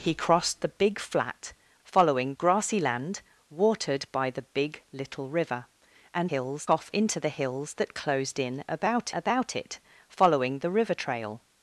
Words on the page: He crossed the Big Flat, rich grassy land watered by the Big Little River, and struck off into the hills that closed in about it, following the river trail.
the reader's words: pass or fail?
fail